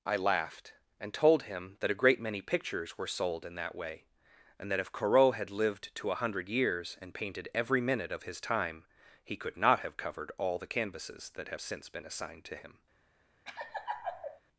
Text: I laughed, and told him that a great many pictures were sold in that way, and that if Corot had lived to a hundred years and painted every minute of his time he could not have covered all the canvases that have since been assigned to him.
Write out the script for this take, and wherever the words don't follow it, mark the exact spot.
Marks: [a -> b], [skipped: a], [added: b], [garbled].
I laughed, and told him that a great many pictures were sold in that way, and that if Corot had lived to a hundred years and painted every minute of his time he could not have covered all the canvases that have since been assigned to him.